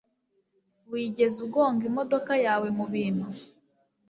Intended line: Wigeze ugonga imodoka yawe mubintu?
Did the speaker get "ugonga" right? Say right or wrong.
right